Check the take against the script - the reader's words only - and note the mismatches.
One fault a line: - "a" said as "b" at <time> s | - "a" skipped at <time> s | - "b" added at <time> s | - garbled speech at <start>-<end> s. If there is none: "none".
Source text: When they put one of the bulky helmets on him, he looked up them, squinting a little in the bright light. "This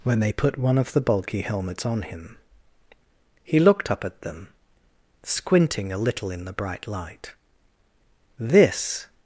- "at" added at 4.0 s